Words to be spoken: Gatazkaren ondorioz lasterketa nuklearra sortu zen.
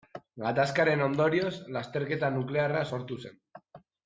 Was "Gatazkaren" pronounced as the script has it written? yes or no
yes